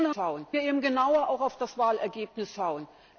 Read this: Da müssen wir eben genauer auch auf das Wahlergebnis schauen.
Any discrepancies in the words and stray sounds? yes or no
yes